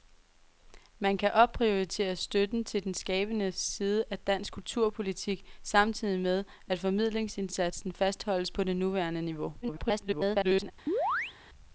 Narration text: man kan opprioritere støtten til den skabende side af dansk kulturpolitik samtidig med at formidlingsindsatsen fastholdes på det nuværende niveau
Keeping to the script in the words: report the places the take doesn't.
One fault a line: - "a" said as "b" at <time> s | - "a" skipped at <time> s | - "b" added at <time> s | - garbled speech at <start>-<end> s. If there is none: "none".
- garbled speech at 9.6-10.7 s